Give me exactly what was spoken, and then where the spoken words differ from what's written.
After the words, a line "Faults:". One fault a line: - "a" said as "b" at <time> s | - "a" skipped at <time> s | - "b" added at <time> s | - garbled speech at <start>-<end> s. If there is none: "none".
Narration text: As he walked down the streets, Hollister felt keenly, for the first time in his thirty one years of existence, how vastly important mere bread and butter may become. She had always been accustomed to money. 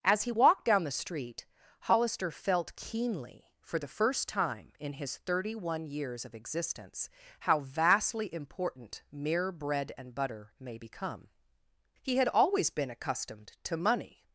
As he walked down the street, Hollister felt keenly, for the first time in his thirty one years of existence, how vastly important mere bread and butter may become. He had always been accustomed to money.
Faults:
- "streets" said as "street" at 0.9 s
- "She" said as "He" at 12.0 s